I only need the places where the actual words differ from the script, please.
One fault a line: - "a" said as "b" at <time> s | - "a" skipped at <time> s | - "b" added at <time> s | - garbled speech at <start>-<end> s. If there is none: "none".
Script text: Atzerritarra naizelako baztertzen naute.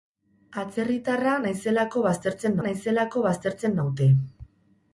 - "naizelako baztertzen" added at 2.6 s